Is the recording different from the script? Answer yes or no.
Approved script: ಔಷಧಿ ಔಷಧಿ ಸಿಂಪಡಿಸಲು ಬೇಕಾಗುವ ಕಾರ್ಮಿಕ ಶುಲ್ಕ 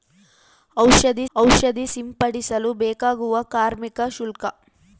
no